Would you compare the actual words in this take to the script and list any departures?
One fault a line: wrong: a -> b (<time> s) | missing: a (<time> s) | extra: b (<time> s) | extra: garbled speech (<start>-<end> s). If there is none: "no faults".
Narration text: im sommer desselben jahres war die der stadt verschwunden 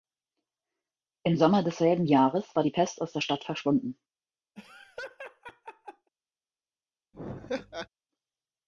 extra: pest aus (2.7 s)